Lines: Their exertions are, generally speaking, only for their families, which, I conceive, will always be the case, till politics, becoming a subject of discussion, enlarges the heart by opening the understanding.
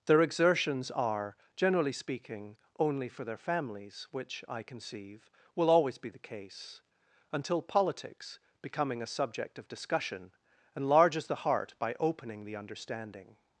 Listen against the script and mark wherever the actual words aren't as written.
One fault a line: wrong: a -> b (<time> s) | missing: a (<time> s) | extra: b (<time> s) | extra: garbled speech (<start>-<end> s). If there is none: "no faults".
wrong: till -> until (7.3 s)